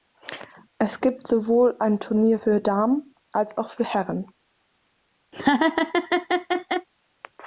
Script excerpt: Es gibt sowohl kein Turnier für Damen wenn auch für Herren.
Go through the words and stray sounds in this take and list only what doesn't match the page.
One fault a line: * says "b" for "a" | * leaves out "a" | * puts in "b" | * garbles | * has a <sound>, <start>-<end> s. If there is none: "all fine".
* says "ein" for "kein"
* says "als" for "wenn"
* has a laugh, 5.3-6.9 s